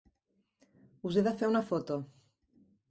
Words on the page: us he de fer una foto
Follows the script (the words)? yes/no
yes